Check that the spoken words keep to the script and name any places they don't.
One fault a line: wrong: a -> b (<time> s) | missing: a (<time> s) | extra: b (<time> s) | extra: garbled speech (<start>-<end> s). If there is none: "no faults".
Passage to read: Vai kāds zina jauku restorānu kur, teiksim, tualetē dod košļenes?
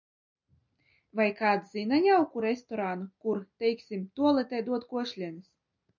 no faults